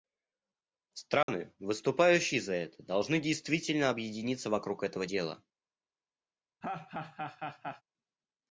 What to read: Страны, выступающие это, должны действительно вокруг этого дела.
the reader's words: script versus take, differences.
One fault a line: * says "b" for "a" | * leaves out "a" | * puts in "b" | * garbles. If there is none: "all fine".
* puts in "за"
* puts in "объединиться"